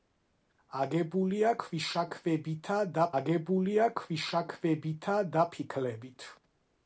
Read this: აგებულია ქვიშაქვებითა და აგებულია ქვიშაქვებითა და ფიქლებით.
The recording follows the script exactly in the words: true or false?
true